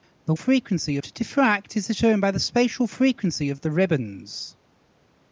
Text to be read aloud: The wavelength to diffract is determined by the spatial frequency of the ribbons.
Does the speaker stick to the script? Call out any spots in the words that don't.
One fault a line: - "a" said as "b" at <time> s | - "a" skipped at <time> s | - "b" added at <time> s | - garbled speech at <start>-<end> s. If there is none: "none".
- "wavelength" said as "frequency" at 0.3 s